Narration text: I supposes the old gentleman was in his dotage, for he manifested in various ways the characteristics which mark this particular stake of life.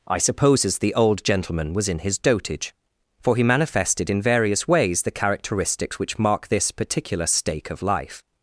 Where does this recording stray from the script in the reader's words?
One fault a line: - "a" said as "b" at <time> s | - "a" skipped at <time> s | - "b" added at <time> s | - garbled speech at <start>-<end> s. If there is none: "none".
none